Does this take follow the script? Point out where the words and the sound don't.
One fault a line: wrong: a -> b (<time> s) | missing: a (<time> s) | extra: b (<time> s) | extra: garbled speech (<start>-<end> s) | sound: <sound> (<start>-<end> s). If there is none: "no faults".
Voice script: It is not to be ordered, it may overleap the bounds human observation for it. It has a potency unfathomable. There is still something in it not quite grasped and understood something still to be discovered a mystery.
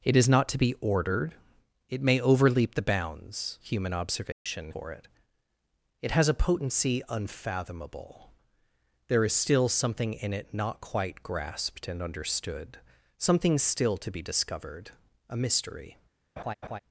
sound: dropout (4.3-4.5 s)
sound: laugh (16.4-16.8 s)